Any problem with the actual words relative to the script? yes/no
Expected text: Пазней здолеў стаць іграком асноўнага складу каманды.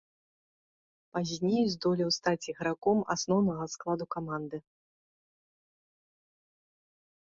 no